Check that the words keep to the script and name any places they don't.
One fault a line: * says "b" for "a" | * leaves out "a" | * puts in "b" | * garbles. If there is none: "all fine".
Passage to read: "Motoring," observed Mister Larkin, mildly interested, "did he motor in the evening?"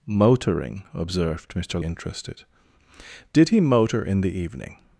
* leaves out "Larkin mildly"